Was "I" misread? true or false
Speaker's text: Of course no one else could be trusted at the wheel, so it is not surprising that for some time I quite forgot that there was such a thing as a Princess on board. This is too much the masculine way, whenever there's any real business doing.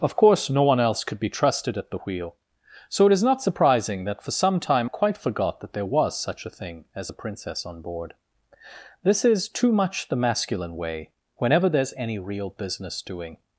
true